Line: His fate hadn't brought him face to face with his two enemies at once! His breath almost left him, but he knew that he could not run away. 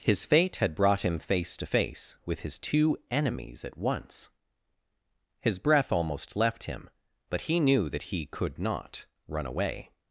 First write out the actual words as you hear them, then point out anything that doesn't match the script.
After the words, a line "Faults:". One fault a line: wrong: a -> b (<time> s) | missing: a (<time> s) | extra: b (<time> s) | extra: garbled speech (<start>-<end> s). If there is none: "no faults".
His fate had brought him face to face with his two enemies at once! His breath almost left him, but he knew that he could not run away.
Faults:
wrong: hadn't -> had (0.6 s)